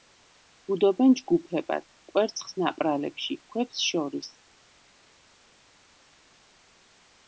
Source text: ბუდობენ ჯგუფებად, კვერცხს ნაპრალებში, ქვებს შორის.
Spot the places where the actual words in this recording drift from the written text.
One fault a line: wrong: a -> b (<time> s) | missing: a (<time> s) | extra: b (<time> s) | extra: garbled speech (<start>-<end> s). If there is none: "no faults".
no faults